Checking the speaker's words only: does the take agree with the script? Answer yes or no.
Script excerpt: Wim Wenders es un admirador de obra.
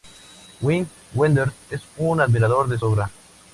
yes